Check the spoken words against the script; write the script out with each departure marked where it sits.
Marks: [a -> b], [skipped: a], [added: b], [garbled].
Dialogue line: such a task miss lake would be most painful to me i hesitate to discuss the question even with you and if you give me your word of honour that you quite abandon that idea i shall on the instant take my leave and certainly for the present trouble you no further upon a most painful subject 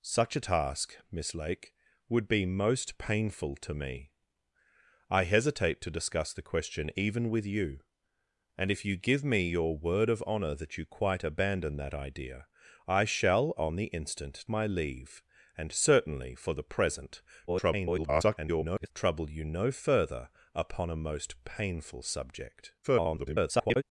such a task miss lake would be most painful to me i hesitate to discuss the question even with you and if you give me your word of honour that you quite abandon that idea i shall on the instant [skipped: take] my leave and certainly for the present [garbled] trouble you no further upon a most painful subject [garbled]